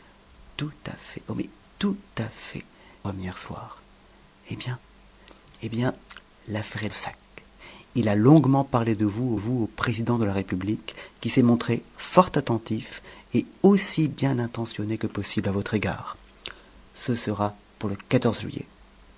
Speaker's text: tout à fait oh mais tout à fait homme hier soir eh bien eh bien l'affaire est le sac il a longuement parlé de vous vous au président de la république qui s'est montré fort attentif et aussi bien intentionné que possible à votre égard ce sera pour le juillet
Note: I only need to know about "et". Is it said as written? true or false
true